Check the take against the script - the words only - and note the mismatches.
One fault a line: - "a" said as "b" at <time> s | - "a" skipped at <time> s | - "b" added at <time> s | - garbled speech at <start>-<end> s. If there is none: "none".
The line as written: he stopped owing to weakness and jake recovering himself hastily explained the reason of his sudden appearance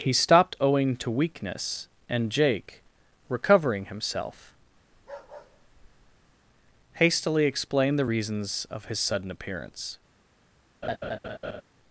- "reason" said as "reasons" at 8.0 s